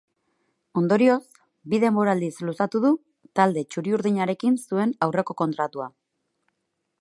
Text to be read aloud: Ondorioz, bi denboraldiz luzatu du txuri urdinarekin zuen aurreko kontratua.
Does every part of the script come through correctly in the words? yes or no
no